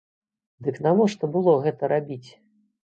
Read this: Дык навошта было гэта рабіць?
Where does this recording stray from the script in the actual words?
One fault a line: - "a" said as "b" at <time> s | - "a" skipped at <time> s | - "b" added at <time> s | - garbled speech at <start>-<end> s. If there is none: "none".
none